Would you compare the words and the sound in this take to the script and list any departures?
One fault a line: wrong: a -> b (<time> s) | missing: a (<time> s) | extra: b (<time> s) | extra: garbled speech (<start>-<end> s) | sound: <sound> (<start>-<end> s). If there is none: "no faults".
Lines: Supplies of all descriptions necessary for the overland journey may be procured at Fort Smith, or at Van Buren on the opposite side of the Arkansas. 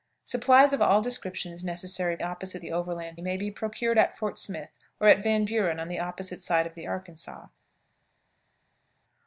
wrong: for -> opposite (2.2 s)
missing: journey (3.2 s)